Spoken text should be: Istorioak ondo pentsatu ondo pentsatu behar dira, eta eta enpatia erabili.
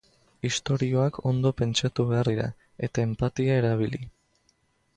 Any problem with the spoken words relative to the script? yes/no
yes